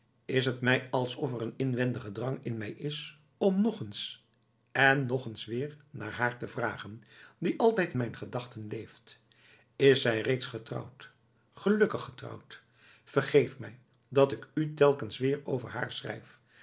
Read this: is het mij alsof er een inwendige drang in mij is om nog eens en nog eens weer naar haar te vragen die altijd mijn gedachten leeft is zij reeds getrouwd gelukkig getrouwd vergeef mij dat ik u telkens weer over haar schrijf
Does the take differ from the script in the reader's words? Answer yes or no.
no